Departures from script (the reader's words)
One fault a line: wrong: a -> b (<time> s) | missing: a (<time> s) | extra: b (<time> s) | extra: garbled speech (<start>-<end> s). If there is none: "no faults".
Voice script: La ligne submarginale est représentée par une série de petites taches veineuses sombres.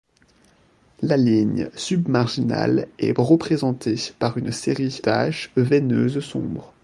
missing: de petites (5.0 s)